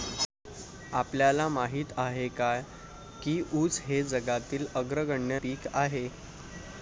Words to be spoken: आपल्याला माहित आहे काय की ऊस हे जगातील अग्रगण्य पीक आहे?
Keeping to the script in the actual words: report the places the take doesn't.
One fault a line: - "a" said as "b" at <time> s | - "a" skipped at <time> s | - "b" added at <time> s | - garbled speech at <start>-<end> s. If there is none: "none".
none